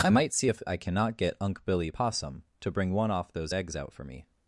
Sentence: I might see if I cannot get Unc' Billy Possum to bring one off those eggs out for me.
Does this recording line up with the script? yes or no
yes